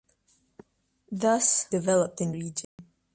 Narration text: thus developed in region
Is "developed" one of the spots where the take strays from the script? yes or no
no